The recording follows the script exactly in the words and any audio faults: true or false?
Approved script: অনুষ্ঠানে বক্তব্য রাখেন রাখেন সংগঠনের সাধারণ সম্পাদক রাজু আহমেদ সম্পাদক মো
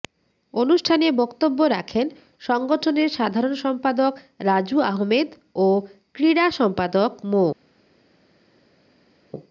false